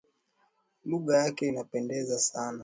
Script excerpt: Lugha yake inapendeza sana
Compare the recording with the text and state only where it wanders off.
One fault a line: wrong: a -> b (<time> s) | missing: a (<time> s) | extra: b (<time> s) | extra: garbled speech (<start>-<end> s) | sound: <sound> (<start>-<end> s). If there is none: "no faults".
no faults